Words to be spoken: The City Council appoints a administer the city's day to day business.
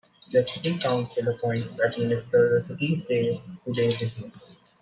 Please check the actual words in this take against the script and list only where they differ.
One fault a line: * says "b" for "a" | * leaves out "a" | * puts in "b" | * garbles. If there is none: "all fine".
all fine